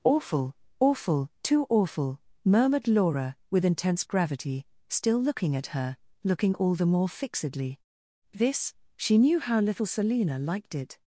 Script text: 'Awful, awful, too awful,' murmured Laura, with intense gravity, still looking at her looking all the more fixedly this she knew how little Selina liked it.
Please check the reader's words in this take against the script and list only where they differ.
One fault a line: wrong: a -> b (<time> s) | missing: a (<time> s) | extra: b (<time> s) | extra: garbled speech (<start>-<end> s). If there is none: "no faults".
no faults